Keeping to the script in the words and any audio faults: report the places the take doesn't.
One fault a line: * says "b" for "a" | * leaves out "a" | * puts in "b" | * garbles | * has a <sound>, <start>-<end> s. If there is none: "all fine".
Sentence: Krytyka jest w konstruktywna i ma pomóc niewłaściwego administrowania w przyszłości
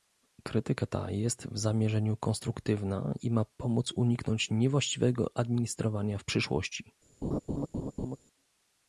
* puts in "ta"
* puts in "zamierzeniu"
* puts in "uniknąć"
* has a laugh, 7.2-8.2 s